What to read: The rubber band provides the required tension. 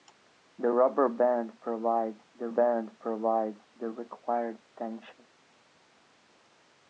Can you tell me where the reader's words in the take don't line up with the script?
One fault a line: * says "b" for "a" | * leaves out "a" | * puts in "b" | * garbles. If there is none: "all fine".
* puts in "band provides the"